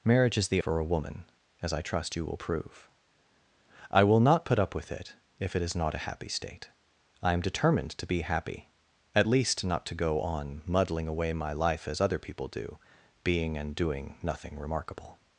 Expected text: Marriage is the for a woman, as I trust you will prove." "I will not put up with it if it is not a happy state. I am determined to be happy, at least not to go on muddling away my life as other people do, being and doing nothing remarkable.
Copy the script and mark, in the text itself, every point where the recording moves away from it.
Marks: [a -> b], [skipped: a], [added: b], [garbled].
Marriage is the for a woman, as I trust you will prove." "I will not put up with it if it is not a happy state. I am determined to be happy, at least not to go on muddling away my life as other people do, being and doing nothing remarkable.